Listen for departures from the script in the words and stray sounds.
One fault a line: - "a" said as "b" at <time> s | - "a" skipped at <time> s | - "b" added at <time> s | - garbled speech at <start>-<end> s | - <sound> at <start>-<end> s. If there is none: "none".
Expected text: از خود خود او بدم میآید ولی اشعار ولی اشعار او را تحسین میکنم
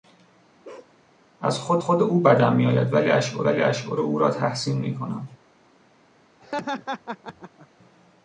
- bark at 0.6-1.0 s
- laugh at 6.4-7.7 s